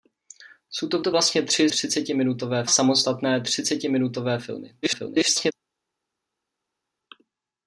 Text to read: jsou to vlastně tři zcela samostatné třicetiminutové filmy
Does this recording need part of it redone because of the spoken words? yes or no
yes